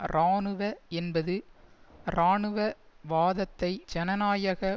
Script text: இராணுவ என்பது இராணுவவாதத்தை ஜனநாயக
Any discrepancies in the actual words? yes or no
no